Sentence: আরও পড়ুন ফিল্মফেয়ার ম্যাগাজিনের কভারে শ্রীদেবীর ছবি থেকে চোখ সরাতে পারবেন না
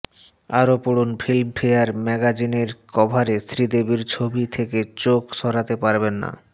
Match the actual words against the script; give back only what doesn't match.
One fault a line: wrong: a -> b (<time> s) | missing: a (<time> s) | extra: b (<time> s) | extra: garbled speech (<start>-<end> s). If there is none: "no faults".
no faults